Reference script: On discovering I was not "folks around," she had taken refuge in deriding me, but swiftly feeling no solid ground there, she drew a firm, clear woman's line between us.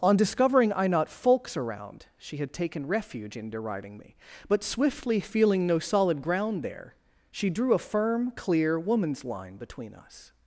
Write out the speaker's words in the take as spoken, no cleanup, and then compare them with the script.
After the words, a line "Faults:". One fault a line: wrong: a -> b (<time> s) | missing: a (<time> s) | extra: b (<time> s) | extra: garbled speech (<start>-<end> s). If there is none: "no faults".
On discovering I not "folks around," she had taken refuge in deriding me, but swiftly feeling no solid ground there, she drew a firm, clear woman's line between us.
Faults:
missing: was (0.9 s)